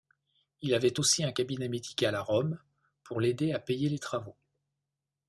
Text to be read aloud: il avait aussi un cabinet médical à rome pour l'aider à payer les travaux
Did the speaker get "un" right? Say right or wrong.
right